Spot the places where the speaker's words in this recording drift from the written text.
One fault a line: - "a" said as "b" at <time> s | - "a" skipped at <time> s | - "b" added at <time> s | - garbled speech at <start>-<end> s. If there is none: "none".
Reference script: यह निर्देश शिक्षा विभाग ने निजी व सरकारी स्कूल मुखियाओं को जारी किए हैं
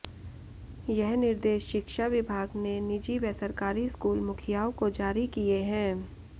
none